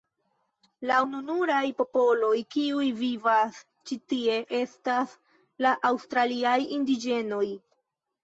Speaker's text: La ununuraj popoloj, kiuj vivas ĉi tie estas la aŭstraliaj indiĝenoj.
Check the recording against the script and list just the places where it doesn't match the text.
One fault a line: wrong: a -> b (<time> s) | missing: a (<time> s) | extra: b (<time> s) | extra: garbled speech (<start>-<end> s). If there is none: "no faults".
no faults